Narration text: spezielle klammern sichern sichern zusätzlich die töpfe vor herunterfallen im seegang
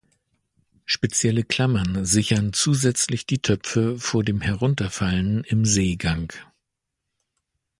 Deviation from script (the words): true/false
true